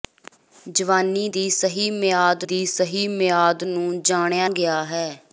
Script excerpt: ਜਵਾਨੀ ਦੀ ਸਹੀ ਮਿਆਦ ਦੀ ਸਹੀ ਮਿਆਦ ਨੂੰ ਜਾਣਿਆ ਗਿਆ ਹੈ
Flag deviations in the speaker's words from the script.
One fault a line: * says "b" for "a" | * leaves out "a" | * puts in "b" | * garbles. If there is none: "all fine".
all fine